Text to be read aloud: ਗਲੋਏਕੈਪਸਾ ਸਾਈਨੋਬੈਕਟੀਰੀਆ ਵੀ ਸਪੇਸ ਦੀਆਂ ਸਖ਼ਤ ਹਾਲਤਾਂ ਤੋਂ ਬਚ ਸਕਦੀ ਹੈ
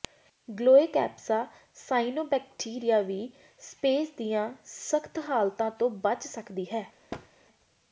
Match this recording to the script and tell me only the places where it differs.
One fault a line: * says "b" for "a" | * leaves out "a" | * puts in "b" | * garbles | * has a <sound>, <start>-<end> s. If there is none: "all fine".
* has a thud, 7.1-7.3 s